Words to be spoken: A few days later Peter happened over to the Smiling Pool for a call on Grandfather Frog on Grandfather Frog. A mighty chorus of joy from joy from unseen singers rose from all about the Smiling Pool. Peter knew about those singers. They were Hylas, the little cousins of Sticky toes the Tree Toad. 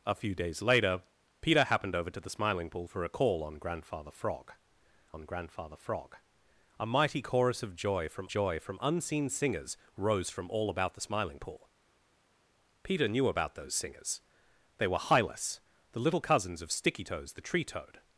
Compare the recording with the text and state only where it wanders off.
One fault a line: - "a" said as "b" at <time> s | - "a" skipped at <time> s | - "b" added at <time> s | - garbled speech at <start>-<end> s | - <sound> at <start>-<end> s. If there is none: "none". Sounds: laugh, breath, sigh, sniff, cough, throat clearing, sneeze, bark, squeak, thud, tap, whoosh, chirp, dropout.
none